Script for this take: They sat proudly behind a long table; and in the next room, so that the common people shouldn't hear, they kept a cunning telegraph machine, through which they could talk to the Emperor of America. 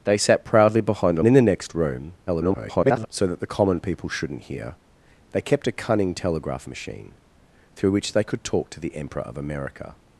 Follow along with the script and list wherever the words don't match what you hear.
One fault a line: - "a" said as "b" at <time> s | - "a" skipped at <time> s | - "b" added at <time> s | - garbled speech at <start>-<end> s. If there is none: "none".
- "long table and" skipped at 1.2 s
- garbled speech at 2.3-3.1 s